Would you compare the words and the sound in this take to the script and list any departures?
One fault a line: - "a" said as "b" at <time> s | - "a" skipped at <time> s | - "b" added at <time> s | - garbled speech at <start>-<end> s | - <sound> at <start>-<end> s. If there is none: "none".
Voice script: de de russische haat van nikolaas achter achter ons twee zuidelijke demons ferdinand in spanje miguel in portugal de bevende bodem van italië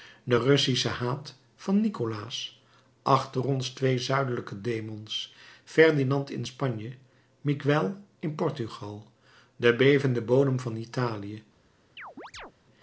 - "de" skipped at 0.4 s
- "achter" skipped at 3.4 s
- chirp at 12.0-12.5 s